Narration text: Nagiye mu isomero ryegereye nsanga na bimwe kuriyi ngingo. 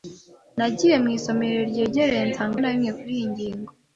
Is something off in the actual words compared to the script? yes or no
no